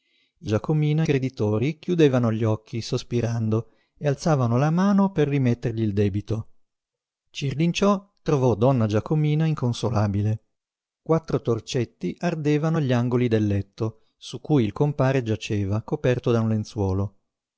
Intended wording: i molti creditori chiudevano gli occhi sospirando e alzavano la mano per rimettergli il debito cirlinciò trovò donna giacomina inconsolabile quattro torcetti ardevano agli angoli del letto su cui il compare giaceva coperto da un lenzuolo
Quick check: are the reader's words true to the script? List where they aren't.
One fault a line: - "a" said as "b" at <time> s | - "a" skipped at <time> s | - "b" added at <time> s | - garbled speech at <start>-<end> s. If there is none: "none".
- "molti" said as "giacomina" at 0.4 s